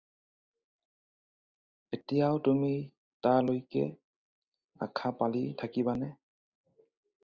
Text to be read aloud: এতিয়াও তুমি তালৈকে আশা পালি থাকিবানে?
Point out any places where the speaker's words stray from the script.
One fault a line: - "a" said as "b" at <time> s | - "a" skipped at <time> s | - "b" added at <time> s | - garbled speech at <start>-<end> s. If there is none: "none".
none